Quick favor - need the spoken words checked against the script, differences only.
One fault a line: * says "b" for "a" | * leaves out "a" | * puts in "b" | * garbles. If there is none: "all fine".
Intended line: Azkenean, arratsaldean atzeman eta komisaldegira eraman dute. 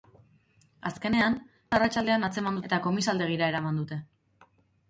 all fine